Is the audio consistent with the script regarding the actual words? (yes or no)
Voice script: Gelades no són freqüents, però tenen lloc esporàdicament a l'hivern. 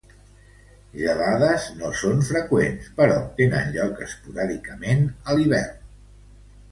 yes